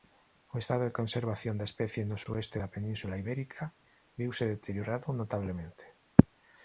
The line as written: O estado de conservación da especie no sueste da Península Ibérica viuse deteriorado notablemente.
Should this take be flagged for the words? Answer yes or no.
no